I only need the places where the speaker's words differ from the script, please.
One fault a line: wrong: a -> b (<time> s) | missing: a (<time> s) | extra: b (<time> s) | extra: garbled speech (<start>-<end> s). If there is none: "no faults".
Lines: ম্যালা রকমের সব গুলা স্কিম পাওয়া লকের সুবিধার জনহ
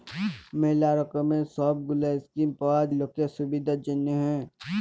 no faults